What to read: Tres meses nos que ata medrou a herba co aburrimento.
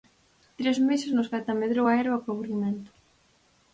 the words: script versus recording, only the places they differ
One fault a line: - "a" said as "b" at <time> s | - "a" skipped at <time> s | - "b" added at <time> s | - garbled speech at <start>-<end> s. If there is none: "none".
none